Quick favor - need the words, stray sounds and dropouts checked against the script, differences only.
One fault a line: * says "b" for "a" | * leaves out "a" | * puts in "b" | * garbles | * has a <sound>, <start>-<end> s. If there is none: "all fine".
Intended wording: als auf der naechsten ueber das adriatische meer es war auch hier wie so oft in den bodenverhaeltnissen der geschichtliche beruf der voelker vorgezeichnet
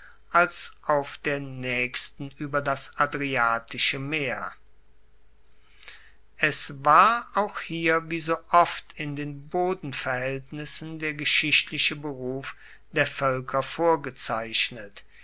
all fine